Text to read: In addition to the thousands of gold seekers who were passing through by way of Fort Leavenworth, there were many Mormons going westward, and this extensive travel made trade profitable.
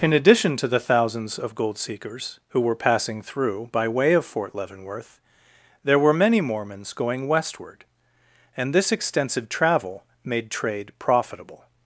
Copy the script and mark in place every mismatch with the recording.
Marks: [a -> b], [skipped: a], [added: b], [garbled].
In addition to the thousands of gold seekers who were passing through by way of Fort Leavenworth, there were many Mormons going westward, and this extensive travel made trade profitable.